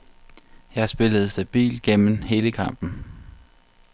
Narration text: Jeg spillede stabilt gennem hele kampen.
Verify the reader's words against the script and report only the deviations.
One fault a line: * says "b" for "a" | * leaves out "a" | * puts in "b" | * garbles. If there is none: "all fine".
all fine